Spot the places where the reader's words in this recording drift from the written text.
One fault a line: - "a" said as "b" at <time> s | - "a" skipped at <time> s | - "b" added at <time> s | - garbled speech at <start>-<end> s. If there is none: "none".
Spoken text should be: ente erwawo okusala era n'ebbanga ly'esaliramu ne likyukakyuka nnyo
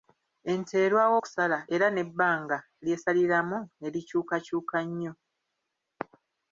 none